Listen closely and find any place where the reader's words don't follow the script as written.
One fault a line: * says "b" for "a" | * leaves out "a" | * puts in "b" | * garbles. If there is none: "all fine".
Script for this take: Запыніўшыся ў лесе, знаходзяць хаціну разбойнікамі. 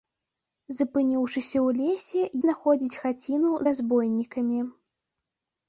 all fine